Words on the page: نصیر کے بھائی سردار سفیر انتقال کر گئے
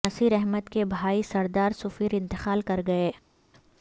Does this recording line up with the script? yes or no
no